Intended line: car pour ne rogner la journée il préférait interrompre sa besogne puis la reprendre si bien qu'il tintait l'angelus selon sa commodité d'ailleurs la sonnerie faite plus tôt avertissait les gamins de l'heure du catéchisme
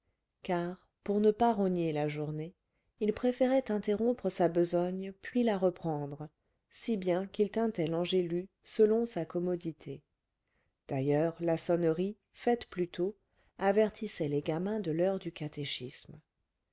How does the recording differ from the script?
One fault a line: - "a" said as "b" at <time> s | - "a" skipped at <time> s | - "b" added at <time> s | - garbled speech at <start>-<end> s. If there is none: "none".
- "pas" added at 1.3 s